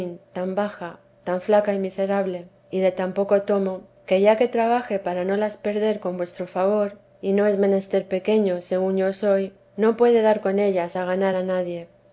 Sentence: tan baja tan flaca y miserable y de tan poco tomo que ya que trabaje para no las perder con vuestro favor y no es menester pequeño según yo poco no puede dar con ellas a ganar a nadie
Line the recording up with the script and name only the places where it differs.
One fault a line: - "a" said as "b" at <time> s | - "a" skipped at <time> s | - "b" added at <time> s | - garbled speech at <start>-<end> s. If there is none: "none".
- "poco" said as "soy" at 9.1 s